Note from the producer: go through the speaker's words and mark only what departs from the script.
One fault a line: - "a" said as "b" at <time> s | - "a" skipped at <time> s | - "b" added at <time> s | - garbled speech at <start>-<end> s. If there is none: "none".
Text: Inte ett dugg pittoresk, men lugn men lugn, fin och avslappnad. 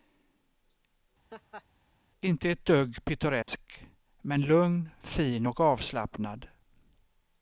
- "men lugn" skipped at 4.9 s